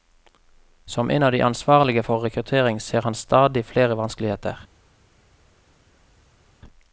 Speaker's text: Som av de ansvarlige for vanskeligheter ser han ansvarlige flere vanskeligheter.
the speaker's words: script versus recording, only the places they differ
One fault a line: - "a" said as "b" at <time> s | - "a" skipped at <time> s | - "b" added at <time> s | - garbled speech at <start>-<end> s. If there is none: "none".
- "en" added at 1.1 s
- "vanskeligheter" said as "rekruttering" at 2.2 s
- "ansvarlige" said as "stadig" at 3.1 s